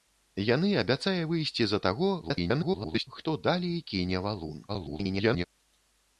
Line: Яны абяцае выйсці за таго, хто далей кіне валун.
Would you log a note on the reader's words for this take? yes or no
yes